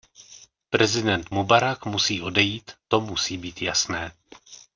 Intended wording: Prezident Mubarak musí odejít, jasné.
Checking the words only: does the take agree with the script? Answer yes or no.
no